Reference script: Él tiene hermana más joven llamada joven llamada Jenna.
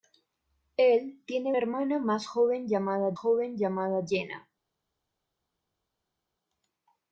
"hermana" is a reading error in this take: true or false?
false